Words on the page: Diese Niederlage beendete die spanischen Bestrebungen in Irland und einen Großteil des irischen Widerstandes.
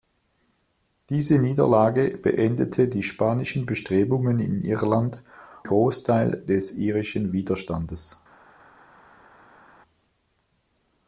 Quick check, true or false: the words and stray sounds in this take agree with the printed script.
false